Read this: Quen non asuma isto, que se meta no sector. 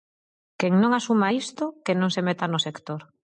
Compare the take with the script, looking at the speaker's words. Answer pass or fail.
fail